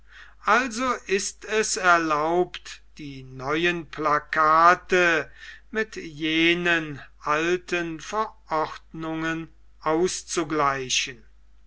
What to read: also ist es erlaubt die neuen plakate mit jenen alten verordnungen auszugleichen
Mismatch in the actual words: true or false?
false